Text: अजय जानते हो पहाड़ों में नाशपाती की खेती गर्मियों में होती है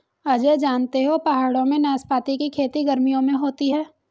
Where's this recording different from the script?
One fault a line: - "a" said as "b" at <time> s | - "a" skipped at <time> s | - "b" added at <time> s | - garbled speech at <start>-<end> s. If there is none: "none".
none